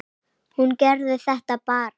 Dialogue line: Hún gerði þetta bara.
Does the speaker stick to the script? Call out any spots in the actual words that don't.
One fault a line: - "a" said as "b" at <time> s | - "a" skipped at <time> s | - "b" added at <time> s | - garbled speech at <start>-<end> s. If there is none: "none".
none